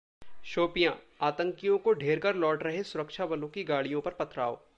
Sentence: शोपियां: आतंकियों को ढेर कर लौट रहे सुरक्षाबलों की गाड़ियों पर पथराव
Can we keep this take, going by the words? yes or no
yes